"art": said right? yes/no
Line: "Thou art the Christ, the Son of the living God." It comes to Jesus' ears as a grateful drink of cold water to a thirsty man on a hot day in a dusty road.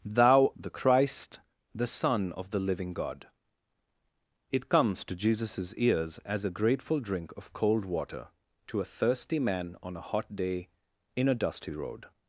no